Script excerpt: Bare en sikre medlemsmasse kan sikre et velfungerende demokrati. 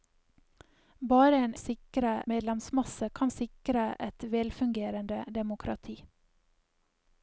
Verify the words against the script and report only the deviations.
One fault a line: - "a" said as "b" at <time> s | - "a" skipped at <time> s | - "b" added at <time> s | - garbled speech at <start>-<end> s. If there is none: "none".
none